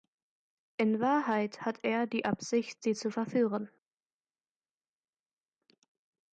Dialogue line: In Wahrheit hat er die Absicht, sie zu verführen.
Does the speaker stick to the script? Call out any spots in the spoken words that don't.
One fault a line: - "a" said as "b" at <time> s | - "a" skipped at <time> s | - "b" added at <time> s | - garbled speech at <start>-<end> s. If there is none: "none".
none